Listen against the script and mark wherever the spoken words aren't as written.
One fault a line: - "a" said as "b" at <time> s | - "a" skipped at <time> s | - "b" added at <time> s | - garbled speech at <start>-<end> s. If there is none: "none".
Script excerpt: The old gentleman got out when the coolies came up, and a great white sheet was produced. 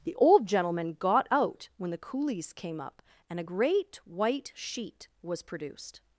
none